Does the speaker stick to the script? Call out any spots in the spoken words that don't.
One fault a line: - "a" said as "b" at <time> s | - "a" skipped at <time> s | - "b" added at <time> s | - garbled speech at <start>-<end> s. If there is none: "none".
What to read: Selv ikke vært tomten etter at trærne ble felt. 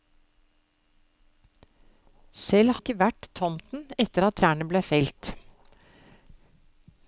none